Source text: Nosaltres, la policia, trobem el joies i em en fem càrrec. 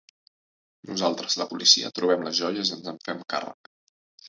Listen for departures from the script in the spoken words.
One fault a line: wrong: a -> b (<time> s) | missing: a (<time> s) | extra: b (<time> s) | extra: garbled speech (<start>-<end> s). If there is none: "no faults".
wrong: el -> les (2.3 s)
wrong: em -> ens (2.8 s)